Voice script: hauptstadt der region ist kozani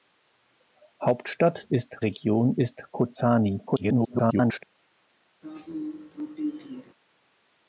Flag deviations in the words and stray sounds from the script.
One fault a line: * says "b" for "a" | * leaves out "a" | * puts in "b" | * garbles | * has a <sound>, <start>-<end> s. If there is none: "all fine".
* says "ist" for "der"
* garbles
* has a throat clearing, 5.4-6.9 s